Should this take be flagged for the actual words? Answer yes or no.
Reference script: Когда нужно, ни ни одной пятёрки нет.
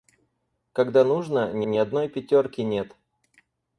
no